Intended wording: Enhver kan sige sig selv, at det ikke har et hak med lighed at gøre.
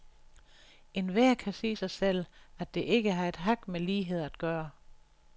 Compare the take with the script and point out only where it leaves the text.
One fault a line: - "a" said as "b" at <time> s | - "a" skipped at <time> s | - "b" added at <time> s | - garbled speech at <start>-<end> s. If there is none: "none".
none